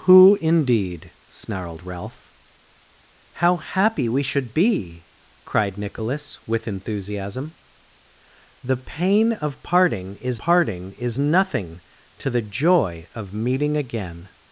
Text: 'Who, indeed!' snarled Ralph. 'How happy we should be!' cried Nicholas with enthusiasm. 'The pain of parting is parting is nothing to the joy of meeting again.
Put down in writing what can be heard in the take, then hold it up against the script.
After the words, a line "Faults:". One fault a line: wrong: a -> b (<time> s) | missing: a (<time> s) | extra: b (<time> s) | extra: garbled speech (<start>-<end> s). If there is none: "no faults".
'Who, indeed!' snarled Ralph. 'How happy we should be!' cried Nicholas with enthusiasm. 'The pain of parting is parting is nothing to the joy of meeting again.
Faults:
no faults